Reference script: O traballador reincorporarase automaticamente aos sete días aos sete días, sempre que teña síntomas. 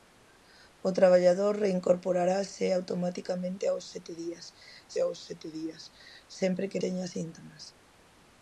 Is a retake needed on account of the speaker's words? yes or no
no